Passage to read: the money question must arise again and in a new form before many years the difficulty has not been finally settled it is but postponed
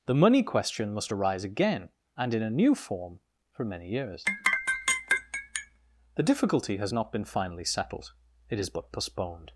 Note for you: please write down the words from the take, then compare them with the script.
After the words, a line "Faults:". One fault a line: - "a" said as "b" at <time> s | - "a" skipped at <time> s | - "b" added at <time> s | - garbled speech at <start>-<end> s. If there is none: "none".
the money question must arise again and in a new form for many years the difficulty has not been finally settled it is but postponed
Faults:
- "before" said as "for" at 3.5 s